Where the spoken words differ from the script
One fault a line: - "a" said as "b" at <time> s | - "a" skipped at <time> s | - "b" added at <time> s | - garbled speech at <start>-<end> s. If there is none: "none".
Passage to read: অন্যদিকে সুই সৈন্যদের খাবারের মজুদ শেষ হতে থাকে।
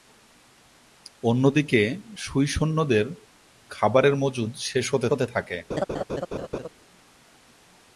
- "হতে" added at 5.1 s